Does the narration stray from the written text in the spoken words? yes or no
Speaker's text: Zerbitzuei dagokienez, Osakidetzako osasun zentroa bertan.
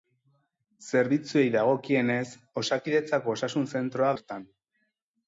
no